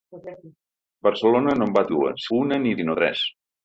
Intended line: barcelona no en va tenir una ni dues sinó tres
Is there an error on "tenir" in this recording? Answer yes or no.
yes